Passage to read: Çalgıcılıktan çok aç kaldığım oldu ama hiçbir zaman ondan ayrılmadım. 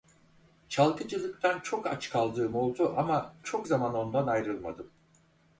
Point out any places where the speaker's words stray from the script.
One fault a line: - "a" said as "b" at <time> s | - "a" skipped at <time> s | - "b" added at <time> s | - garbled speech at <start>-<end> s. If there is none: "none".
- "hiçbir" said as "çok" at 3.4 s